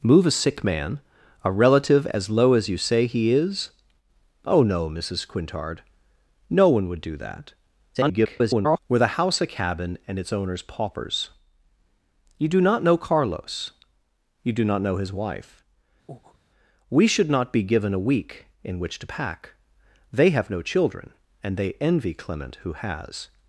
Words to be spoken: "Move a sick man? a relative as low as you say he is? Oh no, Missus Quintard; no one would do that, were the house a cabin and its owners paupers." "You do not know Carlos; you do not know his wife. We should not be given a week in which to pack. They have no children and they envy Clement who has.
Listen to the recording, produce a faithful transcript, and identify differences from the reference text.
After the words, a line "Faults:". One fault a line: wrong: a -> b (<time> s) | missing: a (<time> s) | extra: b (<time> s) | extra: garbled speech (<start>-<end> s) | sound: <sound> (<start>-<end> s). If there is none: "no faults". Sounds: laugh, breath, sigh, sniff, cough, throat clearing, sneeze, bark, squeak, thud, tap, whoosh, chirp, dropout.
"Move a sick man? a relative as low as you say he is? Oh no, Missus Quintard; no one would do that, [garbled] were the house a cabin and its owners paupers." "You do not know Carlos; you do not know his wife. We should not be given a week in which to pack. They have no children and they envy Clement who has.
Faults:
extra: garbled speech (7.9-8.8 s)
sound: breath (16.1-16.4 s)